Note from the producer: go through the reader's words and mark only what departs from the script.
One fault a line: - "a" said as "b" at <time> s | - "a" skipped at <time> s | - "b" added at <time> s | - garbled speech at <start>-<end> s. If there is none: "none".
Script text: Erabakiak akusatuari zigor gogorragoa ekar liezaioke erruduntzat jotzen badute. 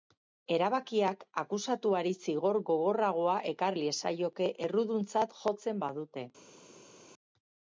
none